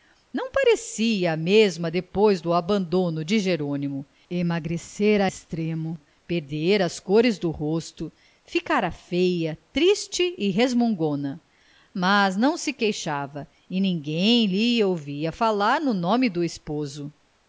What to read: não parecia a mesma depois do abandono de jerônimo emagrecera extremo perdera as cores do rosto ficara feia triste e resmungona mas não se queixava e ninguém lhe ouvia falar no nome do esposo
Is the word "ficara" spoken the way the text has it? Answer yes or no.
yes